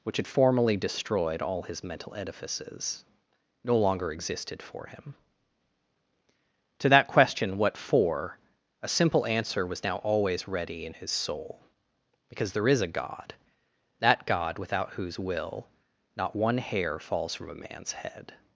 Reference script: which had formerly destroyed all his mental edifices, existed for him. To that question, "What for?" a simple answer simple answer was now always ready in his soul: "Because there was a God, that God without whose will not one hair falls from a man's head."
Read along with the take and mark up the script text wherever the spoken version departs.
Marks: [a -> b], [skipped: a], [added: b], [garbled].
which had formerly destroyed all his mental edifices, [added: no longer] existed for him. To that question, "What for?" a simple answer [skipped: simple answer] was now always ready in his soul: "Because there [was -> is] a God, that God without whose will not one hair falls from a man's head."